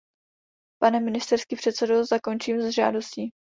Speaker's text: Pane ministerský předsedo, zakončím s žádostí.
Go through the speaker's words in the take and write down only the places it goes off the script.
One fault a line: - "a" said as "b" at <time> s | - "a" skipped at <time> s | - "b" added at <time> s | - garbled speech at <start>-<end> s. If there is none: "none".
none